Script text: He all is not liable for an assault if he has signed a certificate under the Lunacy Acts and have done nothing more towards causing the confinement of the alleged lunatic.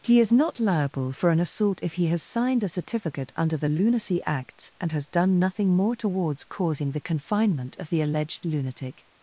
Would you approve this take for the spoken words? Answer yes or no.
no